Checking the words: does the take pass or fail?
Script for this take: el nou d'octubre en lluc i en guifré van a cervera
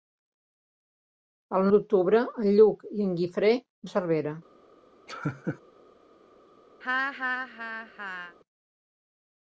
fail